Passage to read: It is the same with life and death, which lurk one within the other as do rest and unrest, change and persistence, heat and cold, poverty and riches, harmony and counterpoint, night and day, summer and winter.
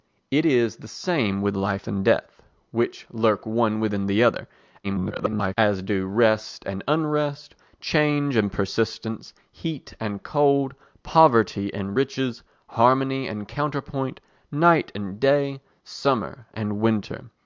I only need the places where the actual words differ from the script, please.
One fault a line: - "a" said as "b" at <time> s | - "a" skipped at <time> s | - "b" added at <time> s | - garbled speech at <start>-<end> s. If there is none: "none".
- garbled speech at 4.8-5.5 s